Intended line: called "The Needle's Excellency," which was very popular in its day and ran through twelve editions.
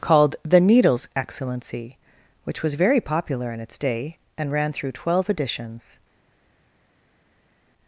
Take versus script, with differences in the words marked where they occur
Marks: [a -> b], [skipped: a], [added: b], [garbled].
called "The Needle's Excellency," which was very popular in its day and ran through twelve editions.